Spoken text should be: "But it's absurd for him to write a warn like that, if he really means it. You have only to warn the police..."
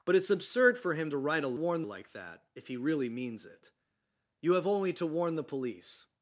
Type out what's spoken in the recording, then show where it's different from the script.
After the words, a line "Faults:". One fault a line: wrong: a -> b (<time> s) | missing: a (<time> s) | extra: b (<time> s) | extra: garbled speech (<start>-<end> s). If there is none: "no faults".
"But it's absurd for him to write a warn like that, if he really means it. You have only to warn the police..."
Faults:
no faults